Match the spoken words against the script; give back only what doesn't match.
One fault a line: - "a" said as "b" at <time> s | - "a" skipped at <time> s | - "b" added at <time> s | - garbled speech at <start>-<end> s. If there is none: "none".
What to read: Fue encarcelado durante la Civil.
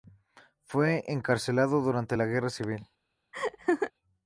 - "Guerra" added at 2.2 s